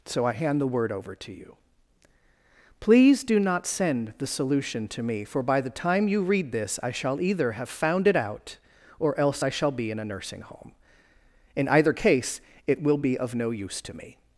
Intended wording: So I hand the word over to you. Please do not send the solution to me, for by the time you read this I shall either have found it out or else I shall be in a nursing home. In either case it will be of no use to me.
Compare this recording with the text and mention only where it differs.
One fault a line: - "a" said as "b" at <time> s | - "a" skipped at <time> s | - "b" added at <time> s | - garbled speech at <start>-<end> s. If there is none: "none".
none